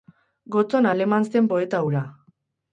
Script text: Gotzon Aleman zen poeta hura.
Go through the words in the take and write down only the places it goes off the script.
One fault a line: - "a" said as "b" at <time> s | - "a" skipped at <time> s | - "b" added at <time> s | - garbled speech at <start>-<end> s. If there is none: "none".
none